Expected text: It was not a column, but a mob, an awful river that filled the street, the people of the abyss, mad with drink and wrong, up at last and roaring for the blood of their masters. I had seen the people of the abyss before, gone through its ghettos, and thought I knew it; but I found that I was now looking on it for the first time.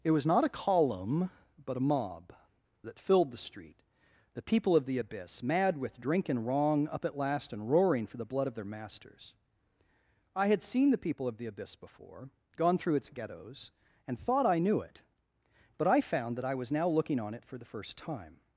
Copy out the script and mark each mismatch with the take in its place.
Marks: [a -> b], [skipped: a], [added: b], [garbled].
It was not a column, but a mob, [skipped: an awful river] that filled the street, the people of the abyss, mad with drink and wrong, up at last and roaring for the blood of their masters. I had seen the people of the abyss before, gone through its ghettos, and thought I knew it; but I found that I was now looking on it for the first time.